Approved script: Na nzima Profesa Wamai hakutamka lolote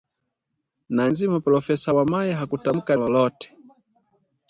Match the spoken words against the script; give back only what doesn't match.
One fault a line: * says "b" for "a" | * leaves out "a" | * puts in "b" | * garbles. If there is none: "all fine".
all fine